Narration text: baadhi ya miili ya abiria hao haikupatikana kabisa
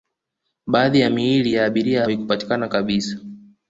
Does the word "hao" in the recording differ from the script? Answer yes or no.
yes